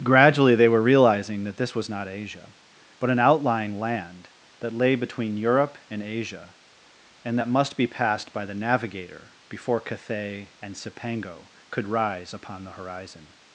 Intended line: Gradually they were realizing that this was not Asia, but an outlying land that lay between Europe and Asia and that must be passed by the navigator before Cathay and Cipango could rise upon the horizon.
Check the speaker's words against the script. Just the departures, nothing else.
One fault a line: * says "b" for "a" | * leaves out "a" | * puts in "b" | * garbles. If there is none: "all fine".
all fine